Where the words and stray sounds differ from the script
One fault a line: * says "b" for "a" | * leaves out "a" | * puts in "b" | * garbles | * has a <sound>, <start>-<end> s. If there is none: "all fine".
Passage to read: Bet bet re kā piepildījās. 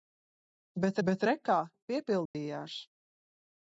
* has a dropout, 2.3-2.3 s